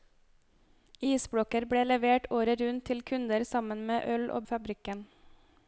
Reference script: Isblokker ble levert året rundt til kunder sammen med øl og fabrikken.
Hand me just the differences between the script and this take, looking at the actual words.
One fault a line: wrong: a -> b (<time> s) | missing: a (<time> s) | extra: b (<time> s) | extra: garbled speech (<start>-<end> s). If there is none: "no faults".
no faults